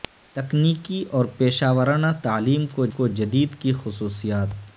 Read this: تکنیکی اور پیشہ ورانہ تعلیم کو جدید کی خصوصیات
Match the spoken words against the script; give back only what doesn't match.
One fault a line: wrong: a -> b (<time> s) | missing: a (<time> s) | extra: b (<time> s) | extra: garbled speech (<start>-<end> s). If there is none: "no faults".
extra: کو (2.9 s)